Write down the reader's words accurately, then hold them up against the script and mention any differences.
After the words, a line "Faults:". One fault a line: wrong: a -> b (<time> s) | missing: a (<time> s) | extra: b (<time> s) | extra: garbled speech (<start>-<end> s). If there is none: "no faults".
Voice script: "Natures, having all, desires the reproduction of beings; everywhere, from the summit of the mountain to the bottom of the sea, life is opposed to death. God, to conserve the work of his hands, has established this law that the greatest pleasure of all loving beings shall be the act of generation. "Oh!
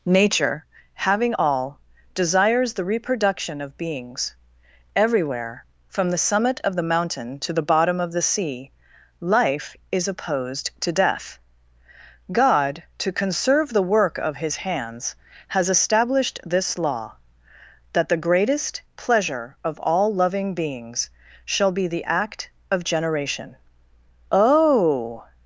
"Nature, having all, desires the reproduction of beings; everywhere, from the summit of the mountain to the bottom of the sea, life is opposed to death. God, to conserve the work of his hands, has established this law that the greatest pleasure of all loving beings shall be the act of generation. "Oh!
Faults:
wrong: Natures -> Nature (0.0 s)